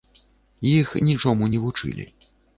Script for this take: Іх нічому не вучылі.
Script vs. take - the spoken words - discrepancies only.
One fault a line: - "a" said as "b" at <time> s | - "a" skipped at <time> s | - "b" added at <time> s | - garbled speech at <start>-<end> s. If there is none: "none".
none